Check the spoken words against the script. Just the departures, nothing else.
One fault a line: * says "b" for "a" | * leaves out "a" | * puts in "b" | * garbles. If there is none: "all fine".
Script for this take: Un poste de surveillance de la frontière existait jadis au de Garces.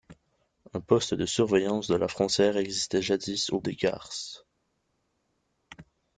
all fine